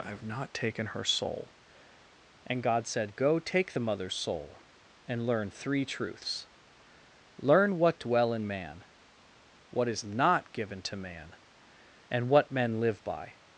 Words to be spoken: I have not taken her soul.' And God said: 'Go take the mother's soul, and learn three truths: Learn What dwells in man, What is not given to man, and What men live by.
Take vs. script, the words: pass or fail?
fail